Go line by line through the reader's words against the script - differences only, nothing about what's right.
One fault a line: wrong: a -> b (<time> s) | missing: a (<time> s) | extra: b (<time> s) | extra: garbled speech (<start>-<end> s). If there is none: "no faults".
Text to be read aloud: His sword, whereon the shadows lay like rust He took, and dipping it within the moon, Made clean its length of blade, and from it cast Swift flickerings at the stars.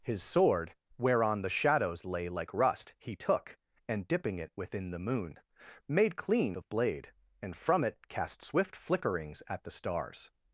missing: its length (6.6 s)